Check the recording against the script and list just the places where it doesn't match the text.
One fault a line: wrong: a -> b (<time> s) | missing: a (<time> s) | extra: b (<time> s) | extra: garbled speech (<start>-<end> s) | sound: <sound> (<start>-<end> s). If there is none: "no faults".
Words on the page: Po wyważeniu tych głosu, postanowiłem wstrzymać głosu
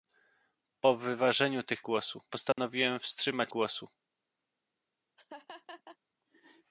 sound: dropout (2.5-2.6 s)
sound: laugh (5.2-6.0 s)